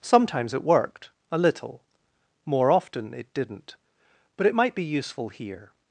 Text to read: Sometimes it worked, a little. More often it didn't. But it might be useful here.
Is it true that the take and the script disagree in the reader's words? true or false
false